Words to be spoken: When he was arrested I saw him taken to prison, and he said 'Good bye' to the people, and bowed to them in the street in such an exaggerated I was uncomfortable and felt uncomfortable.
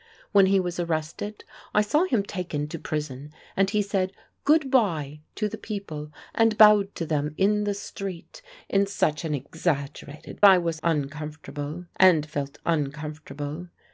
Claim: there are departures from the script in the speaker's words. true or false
false